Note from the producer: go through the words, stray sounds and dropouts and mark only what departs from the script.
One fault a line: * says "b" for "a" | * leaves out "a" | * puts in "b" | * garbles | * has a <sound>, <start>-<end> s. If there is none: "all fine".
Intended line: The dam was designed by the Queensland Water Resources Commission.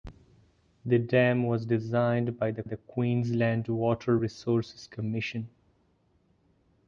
* puts in "the"